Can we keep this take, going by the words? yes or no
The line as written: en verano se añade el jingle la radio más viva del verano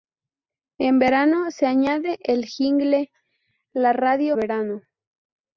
no